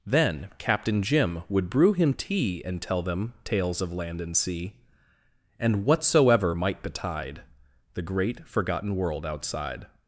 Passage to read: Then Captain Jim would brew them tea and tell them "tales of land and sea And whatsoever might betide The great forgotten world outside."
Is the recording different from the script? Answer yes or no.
yes